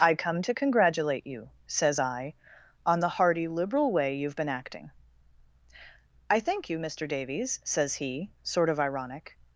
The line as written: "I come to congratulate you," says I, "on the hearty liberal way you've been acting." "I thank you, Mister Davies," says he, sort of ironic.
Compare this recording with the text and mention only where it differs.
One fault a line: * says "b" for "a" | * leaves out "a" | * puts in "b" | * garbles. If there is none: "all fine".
all fine